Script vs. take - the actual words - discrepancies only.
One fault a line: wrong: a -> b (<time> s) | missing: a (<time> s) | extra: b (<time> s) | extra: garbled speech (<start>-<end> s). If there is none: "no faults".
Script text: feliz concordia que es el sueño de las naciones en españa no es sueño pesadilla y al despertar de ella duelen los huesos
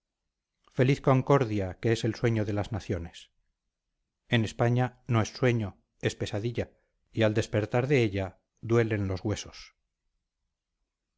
extra: es (6.0 s)